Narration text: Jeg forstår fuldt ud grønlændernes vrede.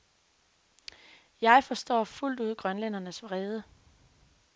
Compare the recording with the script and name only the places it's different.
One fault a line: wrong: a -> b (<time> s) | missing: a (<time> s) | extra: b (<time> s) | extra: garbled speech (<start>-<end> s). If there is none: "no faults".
no faults